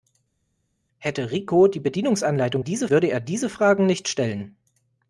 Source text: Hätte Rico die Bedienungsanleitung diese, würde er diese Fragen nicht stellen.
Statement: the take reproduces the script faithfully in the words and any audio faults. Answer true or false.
true